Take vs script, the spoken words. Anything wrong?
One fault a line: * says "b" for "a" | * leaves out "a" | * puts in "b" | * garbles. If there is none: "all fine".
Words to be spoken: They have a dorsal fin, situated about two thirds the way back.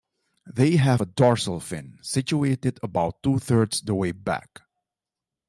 all fine